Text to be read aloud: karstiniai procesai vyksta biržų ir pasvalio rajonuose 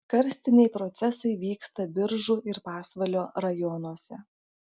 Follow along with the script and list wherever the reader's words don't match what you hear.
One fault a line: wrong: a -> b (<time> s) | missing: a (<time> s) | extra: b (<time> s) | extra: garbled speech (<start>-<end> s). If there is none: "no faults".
no faults